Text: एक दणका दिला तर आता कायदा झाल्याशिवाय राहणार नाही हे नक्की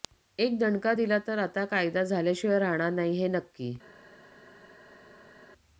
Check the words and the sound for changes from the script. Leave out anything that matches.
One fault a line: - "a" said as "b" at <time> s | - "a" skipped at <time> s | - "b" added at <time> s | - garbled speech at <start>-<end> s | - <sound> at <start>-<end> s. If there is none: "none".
none